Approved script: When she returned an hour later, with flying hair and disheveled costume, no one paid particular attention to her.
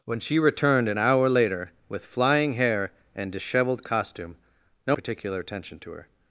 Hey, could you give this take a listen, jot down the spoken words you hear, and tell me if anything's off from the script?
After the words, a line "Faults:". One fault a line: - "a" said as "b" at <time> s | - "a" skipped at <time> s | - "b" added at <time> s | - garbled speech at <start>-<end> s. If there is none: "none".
When she returned an hour later, with flying hair and disheveled costume, no particular attention to her.
Faults:
- "one paid" skipped at 5.0 s